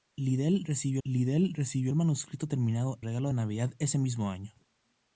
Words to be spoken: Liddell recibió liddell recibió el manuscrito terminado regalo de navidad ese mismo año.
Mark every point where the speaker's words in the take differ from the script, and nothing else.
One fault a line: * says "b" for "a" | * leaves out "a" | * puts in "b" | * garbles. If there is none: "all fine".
all fine